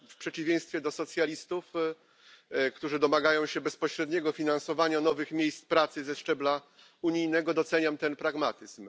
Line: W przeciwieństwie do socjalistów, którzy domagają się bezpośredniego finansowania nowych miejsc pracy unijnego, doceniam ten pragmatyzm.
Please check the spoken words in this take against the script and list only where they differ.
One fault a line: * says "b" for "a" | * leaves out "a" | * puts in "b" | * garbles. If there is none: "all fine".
* puts in "ze szczebla"